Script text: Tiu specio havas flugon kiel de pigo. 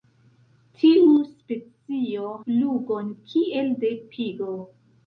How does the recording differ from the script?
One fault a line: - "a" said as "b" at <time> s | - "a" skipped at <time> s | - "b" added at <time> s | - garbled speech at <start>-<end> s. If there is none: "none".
- "havas" skipped at 2.3 s